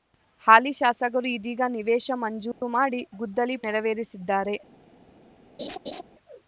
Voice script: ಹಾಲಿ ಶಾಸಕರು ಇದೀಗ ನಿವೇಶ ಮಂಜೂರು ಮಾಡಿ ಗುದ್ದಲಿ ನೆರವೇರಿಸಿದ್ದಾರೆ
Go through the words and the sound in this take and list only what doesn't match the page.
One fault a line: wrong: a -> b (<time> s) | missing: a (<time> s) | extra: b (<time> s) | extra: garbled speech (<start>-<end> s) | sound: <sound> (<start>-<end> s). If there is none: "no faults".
sound: dropout (2.5-2.6 s)
sound: laugh (5.6-6.0 s)